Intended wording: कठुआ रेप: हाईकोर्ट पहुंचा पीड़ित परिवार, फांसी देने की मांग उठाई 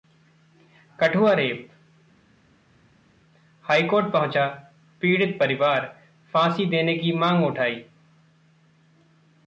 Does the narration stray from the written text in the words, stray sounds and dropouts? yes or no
no